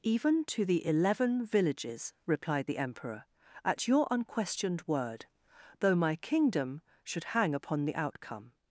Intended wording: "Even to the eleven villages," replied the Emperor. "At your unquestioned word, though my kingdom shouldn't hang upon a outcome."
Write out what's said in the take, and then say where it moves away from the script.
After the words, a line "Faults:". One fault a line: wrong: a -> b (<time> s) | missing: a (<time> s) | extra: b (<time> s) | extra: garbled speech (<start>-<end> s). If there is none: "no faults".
"Even to the eleven villages," replied the Emperor. "At your unquestioned word, though my kingdom should hang upon the outcome."
Faults:
wrong: shouldn't -> should (7.0 s)
wrong: a -> the (7.8 s)